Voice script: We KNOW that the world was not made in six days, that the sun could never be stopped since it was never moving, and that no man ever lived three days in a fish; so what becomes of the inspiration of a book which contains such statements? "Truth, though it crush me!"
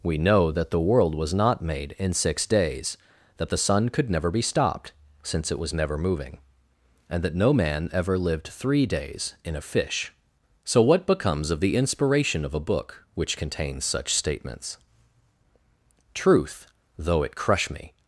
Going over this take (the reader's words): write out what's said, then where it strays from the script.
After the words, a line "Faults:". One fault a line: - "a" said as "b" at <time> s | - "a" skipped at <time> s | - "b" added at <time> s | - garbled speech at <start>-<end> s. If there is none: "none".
We KNOW that the world was not made in six days, that the sun could never be stopped since it was never moving, and that no man ever lived three days in a fish; so what becomes of the inspiration of a book which contains such statements? "Truth, though it crush me!"
Faults:
none